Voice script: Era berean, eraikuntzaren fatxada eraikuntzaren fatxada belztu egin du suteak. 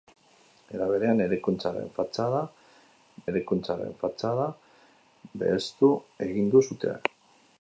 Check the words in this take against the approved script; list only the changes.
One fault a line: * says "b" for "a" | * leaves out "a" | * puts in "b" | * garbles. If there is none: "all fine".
all fine